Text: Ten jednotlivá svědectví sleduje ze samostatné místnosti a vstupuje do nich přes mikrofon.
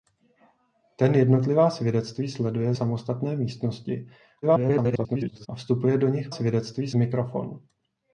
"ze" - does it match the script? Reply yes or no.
no